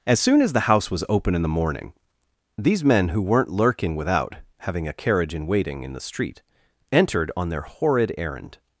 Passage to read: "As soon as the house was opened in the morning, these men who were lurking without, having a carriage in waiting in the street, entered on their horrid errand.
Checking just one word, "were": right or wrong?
wrong